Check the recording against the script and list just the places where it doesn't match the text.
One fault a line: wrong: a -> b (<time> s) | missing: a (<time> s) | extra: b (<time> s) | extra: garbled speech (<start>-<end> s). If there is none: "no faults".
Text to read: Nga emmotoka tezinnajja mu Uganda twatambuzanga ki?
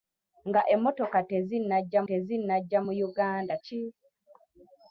extra: tezinnajja (2.1 s)
missing: twatambuzanga (3.5 s)